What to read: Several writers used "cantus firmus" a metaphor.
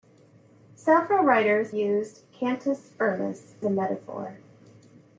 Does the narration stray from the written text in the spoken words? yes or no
no